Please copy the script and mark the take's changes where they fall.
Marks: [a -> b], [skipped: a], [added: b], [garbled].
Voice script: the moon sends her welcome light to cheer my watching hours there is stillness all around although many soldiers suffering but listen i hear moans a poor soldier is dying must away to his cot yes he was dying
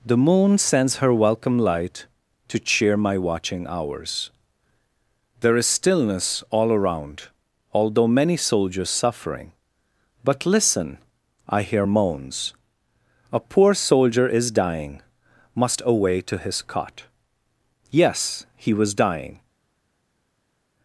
the moon sends her welcome light to cheer my watching hours there is stillness all around although many soldiers suffering but listen i hear moans a poor soldier is dying must away to his cot yes he was dying